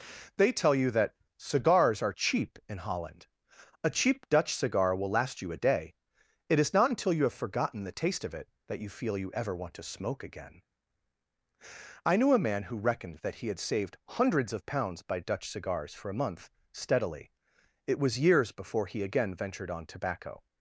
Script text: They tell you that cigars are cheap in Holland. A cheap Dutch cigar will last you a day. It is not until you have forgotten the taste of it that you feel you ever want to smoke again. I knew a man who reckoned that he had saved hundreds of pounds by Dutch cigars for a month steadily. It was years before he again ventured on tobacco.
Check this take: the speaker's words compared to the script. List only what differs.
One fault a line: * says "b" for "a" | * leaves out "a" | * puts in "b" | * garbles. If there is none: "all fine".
all fine